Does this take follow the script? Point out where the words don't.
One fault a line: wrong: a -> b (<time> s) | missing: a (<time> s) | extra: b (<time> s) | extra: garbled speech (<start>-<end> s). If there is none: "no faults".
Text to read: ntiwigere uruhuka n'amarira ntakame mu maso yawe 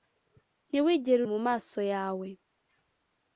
missing: uruhuka n'amarira ntakame (1.2 s)